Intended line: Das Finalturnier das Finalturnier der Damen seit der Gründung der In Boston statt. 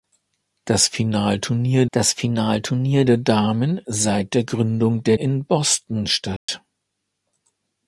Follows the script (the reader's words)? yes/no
yes